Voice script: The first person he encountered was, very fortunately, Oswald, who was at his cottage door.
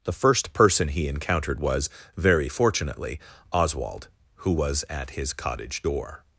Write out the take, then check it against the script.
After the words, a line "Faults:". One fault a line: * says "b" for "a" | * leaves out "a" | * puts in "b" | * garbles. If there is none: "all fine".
The first person he encountered was, very fortunately, Oswald, who was at his cottage door.
Faults:
all fine